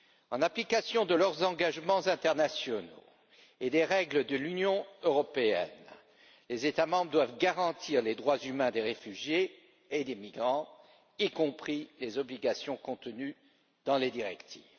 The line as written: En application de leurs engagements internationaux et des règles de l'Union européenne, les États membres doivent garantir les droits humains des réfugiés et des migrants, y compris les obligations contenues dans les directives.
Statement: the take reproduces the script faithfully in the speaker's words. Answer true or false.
true